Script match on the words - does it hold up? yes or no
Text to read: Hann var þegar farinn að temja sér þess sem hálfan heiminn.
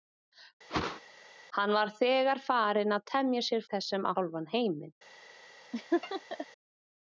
yes